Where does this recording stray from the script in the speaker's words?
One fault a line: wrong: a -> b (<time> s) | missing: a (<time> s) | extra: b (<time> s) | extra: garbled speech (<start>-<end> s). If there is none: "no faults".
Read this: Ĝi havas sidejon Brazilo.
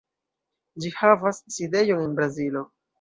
extra: en (2.0 s)